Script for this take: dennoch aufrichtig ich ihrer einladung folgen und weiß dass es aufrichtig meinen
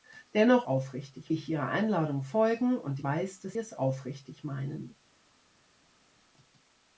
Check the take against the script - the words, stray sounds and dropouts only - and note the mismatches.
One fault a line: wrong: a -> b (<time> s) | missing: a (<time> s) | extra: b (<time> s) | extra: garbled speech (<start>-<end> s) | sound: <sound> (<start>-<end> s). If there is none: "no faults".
no faults